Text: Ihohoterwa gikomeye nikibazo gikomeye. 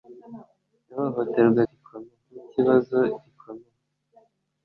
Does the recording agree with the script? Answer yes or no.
yes